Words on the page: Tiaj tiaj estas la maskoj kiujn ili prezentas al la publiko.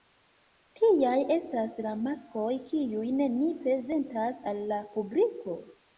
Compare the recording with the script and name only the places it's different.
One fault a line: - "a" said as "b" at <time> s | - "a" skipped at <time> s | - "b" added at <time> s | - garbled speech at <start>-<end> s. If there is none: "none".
- "tiaj" skipped at 1.2 s
- "ili" said as "ni" at 3.4 s